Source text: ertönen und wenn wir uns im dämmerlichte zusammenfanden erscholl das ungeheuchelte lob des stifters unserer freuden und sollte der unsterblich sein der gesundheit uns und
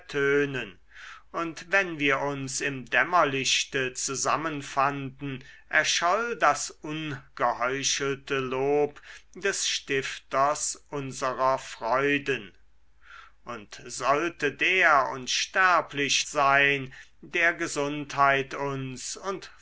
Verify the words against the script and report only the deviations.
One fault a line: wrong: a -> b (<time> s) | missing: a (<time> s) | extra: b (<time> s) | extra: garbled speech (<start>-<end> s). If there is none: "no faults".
no faults